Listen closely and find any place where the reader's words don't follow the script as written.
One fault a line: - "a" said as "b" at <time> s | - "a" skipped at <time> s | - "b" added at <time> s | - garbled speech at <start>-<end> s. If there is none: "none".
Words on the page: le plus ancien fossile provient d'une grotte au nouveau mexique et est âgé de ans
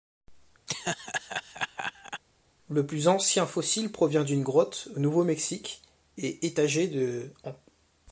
none